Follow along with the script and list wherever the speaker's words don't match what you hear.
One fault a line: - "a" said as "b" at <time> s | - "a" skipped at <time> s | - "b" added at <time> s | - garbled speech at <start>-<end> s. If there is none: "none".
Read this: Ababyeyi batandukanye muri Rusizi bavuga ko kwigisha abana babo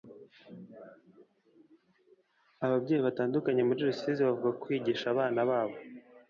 none